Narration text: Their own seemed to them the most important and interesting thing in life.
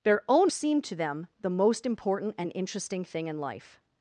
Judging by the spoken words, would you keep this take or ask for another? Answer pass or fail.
pass